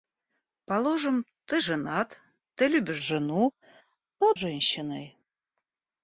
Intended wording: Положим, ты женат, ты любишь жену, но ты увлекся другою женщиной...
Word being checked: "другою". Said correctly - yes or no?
no